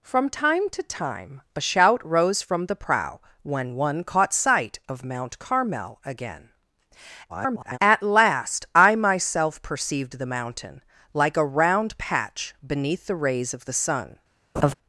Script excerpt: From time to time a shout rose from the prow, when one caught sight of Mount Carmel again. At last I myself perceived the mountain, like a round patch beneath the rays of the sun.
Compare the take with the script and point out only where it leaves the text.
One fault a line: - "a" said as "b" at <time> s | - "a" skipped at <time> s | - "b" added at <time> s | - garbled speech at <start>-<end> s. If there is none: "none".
- garbled speech at 7.3-7.8 s